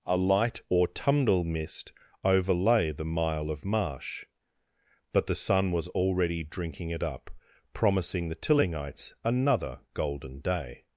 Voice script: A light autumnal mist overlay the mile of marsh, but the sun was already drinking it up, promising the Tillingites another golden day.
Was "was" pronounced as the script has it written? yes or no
yes